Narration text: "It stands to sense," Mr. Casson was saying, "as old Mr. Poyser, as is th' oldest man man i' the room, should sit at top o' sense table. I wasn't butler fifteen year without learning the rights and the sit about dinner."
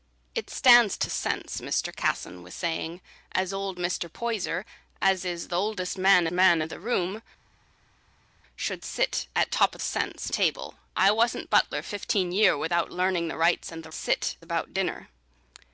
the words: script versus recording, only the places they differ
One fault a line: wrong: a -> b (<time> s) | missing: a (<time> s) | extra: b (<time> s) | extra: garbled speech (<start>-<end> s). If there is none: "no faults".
no faults